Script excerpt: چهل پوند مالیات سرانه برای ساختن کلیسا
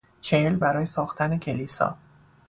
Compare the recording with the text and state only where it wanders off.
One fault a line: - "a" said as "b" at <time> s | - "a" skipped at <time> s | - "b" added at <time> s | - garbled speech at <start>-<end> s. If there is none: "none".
- "پوند مالیات سرانه" skipped at 0.6 s